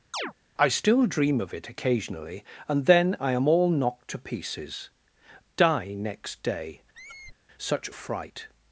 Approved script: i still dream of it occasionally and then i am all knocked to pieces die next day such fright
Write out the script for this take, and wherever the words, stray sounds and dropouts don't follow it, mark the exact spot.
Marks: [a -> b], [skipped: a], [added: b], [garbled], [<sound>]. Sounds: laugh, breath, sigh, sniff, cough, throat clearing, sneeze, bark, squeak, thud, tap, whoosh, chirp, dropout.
[chirp] i still dream of it occasionally and then i am all knocked to pieces die next day [squeak] such fright